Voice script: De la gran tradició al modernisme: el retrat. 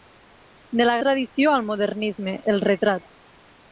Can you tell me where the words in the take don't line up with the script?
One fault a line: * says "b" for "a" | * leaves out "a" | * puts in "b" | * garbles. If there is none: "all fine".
* leaves out "gran"